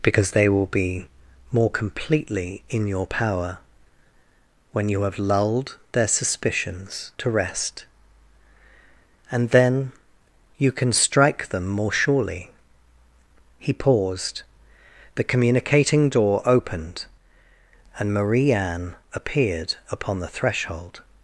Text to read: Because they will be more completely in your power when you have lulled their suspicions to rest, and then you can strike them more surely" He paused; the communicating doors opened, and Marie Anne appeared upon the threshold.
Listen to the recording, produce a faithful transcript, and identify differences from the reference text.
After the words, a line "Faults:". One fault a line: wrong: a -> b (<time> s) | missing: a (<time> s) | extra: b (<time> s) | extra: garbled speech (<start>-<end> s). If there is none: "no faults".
Because they will be more completely in your power when you have lulled their suspicions to rest, and then you can strike them more surely" He paused; the communicating door opened, and Marie Anne appeared upon the threshold.
Faults:
wrong: doors -> door (16.1 s)